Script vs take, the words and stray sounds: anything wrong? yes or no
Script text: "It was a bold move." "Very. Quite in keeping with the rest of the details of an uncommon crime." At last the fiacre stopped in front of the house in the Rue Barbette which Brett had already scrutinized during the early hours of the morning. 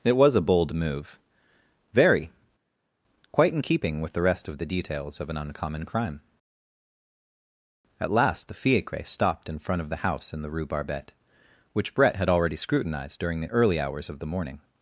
no